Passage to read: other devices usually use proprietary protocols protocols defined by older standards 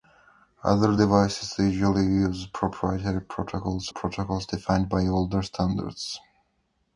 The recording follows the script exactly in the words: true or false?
true